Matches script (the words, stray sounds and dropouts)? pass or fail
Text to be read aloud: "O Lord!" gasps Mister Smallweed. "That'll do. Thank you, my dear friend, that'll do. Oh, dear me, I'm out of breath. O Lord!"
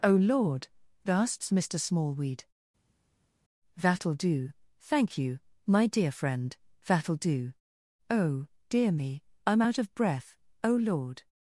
pass